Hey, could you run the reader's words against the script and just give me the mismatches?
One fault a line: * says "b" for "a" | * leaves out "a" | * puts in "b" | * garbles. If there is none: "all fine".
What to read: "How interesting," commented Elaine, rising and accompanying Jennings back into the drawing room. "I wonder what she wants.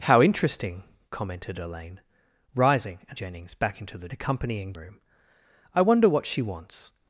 * leaves out "accompanying"
* says "accompanying" for "drawing"